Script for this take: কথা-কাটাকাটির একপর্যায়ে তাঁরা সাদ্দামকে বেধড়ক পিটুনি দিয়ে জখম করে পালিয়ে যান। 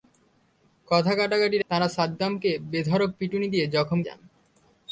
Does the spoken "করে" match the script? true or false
false